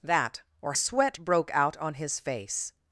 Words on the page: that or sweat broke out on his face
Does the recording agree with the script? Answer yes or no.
yes